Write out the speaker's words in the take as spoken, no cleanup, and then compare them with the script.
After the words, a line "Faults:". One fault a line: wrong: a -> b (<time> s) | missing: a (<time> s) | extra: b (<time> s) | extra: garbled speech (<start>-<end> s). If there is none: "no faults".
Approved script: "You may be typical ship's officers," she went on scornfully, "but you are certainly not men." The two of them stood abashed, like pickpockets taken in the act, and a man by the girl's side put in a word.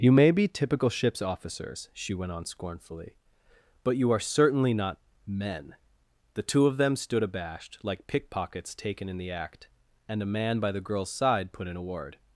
"You may be typical ship's officers," she went on scornfully, "but you are certainly not men." The two of them stood abashed, like pickpockets taken in the act, and a man by the girl's side put in a word.
Faults:
no faults